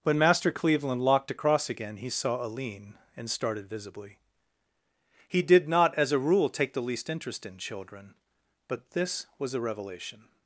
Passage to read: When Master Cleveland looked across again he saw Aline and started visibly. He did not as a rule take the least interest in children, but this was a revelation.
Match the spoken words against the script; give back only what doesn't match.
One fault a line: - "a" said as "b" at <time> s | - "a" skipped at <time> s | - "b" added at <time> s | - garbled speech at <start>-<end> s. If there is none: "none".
- "looked" said as "locked" at 1.0 s